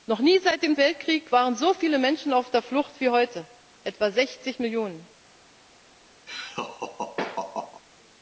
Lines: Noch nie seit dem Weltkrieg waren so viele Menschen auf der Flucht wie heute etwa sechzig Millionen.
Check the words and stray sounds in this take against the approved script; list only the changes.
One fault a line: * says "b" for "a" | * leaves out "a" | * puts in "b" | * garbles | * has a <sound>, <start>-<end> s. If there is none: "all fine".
* has a laugh, 6.3-7.8 s